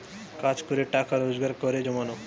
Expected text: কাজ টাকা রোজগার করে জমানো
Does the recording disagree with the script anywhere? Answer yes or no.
yes